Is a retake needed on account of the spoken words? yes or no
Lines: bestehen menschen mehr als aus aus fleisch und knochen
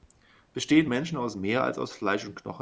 yes